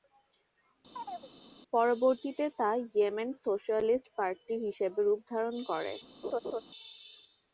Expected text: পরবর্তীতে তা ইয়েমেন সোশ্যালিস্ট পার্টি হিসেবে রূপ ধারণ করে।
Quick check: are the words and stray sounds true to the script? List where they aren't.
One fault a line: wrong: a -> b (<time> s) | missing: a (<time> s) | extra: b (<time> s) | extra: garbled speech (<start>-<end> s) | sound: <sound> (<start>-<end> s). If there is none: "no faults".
sound: chirp (0.9-1.3 s)
sound: laugh (6.2-6.6 s)